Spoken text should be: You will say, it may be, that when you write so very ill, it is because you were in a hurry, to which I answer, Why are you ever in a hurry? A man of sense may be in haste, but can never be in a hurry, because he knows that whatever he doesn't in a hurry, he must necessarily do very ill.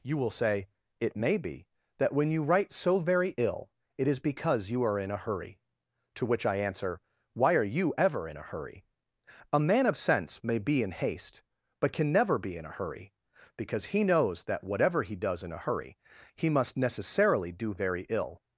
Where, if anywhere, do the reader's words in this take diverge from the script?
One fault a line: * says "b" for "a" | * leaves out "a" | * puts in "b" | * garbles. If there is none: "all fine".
* says "are" for "were"
* says "does" for "doesn't"